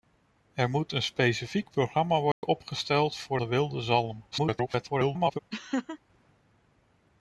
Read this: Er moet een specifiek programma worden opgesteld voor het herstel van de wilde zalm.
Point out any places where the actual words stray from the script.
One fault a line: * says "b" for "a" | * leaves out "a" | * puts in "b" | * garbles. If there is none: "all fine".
* leaves out "het herstel van"
* garbles